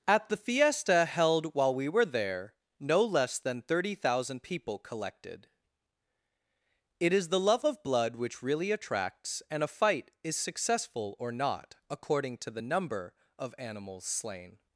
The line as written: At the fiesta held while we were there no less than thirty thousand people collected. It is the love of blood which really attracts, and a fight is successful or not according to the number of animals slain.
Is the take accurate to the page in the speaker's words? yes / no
yes